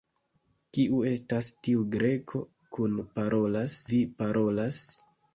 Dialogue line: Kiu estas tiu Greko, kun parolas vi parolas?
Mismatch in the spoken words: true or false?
false